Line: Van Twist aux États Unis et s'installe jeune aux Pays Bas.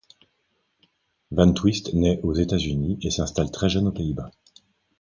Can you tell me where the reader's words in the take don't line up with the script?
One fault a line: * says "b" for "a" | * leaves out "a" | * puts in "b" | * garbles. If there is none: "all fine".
* puts in "naît"
* puts in "très"